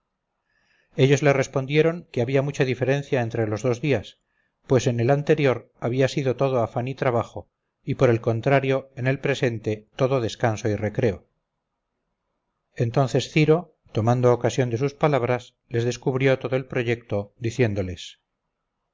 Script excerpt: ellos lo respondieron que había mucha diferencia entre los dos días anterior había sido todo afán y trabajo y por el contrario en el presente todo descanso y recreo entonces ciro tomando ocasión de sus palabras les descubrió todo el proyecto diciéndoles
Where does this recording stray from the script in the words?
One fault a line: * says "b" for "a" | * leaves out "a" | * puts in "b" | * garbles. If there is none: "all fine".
* says "le" for "lo"
* puts in "pues en el"